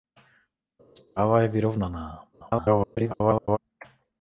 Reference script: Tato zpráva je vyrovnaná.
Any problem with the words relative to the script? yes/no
yes